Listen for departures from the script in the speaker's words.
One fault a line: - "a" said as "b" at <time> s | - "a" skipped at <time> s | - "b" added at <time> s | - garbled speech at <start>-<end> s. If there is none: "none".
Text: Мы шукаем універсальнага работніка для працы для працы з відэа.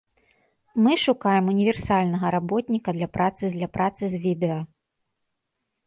none